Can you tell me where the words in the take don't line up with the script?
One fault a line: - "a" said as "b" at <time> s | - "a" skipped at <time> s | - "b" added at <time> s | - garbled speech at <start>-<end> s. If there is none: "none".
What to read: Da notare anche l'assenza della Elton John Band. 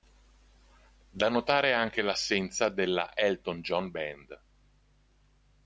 none